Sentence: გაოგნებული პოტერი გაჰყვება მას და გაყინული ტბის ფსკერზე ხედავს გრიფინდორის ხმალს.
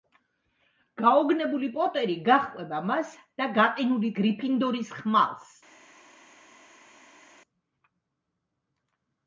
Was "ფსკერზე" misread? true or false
true